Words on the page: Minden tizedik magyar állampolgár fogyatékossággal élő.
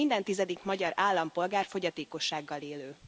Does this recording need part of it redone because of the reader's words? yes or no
no